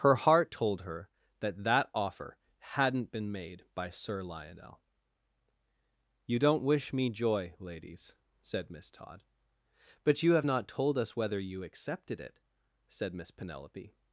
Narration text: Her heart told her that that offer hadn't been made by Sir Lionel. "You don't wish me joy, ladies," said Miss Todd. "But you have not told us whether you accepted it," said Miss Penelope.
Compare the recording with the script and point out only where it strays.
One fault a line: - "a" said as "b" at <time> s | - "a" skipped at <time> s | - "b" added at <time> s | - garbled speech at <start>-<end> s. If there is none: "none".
none